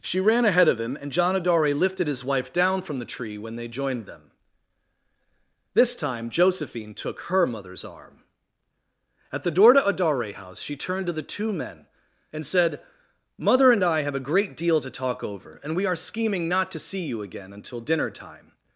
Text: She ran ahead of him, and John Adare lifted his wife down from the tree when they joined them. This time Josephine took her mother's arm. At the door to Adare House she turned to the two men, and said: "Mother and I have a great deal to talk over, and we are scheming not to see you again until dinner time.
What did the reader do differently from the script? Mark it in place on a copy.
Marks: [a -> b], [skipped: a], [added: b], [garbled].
She ran ahead of him, and John Adare lifted his wife down from the tree when they joined them. This time Josephine took her mother's arm. At the door to Adare House she turned to the two men, and said: "Mother and I have a great deal to talk over, and we are scheming not to see you again until dinner time.